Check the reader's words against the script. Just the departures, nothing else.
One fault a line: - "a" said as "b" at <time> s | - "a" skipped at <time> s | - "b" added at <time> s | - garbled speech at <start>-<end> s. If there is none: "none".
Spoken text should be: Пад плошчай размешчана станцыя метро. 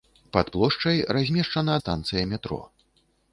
none